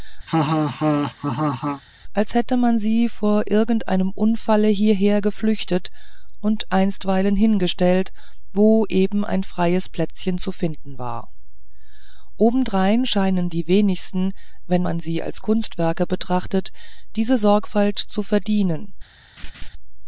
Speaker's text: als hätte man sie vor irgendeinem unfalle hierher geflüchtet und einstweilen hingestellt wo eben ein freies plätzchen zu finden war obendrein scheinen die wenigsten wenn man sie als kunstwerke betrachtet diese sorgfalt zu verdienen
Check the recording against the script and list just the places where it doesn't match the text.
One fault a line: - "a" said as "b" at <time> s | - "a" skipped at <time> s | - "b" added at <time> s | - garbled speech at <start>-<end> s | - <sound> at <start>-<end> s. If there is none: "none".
- laugh at 0.3-1.8 s
- laugh at 19.4-19.7 s